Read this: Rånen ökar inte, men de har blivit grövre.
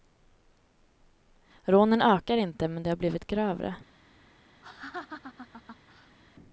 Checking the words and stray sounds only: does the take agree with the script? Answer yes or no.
no